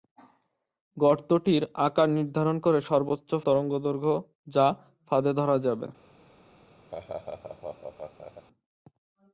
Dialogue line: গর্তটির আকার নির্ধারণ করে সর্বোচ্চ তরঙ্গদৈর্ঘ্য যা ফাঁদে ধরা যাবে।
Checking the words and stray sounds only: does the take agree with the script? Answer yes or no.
no